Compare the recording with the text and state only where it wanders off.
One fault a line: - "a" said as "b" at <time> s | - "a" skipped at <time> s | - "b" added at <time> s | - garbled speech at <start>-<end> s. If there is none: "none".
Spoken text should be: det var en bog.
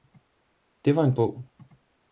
none